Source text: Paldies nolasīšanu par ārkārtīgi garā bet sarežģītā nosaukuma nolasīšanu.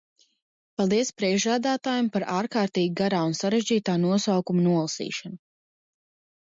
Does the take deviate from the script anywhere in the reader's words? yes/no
yes